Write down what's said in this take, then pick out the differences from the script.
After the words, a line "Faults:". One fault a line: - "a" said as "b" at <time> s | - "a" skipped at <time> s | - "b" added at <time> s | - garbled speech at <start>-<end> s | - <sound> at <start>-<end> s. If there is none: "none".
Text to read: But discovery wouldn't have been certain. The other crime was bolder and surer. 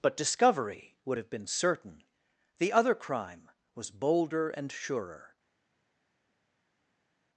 But discovery would have been certain. The other crime was bolder and surer.
Faults:
- "wouldn't" said as "would" at 1.1 s